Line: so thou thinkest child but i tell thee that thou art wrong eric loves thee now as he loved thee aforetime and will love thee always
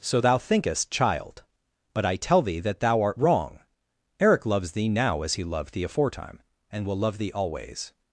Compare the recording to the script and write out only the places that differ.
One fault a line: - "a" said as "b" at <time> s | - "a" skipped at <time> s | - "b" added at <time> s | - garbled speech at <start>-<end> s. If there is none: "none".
none